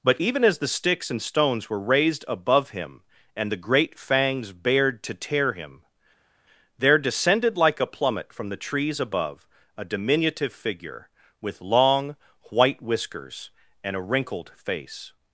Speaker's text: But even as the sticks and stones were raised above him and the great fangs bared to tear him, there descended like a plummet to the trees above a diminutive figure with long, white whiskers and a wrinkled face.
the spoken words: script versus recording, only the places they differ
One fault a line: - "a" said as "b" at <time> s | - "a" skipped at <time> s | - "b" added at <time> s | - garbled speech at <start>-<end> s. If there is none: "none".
- "to" said as "from" at 8.3 s